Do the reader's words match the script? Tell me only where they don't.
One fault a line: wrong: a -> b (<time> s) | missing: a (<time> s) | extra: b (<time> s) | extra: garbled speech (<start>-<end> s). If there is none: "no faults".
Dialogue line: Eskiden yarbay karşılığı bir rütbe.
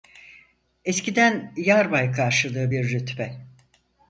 no faults